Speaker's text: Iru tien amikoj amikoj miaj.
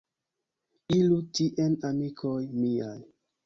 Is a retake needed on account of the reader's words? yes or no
yes